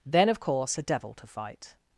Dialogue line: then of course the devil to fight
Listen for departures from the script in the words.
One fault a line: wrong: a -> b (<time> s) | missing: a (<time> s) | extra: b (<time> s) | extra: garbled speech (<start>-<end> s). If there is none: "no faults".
no faults